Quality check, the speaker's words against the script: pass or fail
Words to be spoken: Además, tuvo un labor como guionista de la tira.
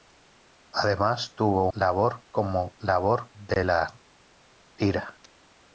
fail